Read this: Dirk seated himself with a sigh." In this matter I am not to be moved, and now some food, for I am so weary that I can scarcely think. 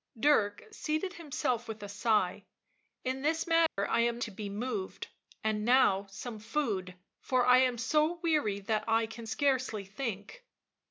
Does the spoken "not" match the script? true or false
false